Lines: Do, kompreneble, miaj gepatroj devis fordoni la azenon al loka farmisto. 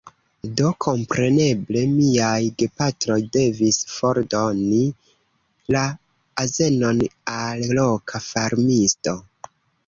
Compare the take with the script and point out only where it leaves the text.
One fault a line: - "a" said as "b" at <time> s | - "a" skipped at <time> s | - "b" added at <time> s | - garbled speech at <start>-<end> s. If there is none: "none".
none